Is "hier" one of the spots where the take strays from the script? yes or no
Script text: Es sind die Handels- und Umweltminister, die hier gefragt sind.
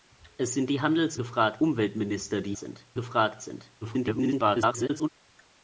yes